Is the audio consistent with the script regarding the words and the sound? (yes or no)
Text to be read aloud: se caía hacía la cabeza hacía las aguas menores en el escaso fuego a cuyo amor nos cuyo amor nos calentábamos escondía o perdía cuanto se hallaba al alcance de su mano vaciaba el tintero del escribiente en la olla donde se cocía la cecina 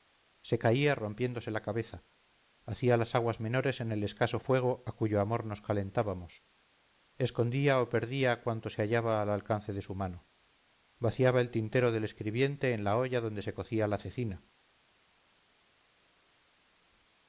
no